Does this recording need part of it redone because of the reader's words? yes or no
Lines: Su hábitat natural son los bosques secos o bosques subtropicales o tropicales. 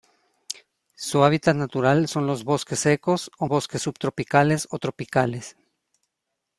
no